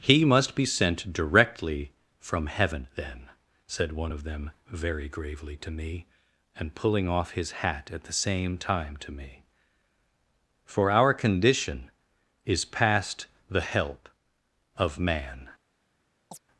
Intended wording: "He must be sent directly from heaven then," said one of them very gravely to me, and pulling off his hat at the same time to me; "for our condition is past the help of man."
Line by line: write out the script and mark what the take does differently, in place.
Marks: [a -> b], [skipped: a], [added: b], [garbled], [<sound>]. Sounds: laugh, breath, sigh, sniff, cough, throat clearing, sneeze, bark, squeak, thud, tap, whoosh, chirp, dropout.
"He must be sent directly from heaven then," said one of them very gravely to me, and pulling off his hat at the same time to me; "for our condition is past the help of man." [chirp]